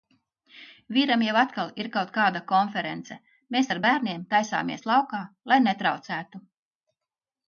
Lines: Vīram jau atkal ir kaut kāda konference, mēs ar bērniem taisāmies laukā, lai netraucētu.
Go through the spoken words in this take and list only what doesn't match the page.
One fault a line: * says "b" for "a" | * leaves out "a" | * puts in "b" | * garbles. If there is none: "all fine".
all fine